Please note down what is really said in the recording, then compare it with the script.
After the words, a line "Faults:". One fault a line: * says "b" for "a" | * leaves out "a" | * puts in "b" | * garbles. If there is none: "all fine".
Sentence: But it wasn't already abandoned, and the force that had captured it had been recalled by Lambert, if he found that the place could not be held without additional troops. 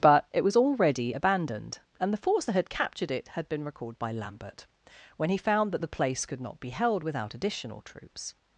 But it was already abandoned, and the force that had captured it had been recalled by Lambert, when he found that the place could not be held without additional troops.
Faults:
* says "was" for "wasn't"
* says "when" for "if"